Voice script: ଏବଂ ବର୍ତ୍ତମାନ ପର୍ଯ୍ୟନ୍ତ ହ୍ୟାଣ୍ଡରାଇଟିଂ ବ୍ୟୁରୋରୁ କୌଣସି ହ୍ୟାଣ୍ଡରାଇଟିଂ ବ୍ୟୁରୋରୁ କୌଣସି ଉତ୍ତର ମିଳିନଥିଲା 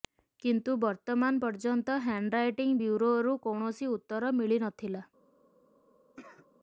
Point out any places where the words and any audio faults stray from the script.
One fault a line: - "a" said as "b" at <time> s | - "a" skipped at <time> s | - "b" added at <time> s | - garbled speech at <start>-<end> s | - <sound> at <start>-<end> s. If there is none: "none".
- "ଏବଂ" said as "କିନ୍ତୁ" at 0.4 s
- "ହ୍ୟାଣ୍ଡରାଇଟିଂ ବ୍ୟୁରୋରୁ କୌଣସି" skipped at 3.9 s
- cough at 6.2-6.5 s